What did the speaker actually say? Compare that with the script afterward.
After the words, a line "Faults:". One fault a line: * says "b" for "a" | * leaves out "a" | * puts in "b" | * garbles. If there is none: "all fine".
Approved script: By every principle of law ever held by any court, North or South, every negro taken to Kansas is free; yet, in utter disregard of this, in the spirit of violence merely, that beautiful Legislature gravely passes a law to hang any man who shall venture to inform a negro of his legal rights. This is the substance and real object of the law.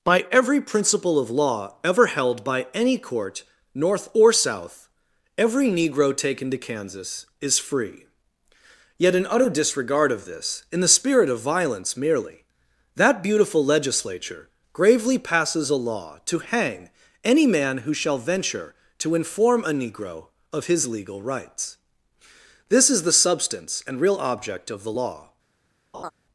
By every principle of law ever held by any court, North or South, every negro taken to Kansas is free; yet, in utter disregard of this, in the spirit of violence merely, that beautiful Legislature gravely passes a law to hang any man who shall venture to inform a negro of his legal rights. This is the substance and real object of the law.
Faults:
all fine